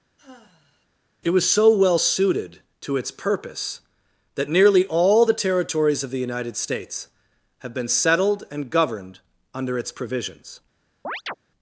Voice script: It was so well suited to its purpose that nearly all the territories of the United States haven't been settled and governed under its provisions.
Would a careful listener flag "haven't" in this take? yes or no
yes